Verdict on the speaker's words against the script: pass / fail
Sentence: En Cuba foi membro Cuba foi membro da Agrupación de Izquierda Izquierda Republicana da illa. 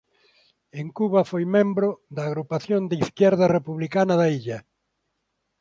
fail